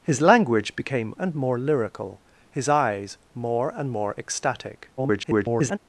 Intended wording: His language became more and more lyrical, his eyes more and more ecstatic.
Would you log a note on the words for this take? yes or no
yes